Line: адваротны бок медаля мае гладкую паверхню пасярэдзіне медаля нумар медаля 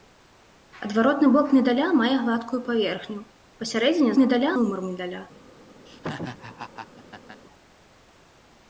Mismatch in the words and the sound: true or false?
true